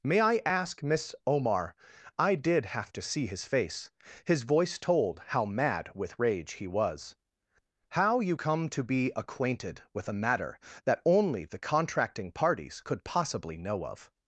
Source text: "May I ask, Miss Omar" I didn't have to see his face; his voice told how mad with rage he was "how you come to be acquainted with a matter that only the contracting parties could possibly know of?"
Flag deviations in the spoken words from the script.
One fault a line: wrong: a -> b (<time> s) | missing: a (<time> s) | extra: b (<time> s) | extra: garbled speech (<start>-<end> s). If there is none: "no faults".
wrong: didn't -> did (2.3 s)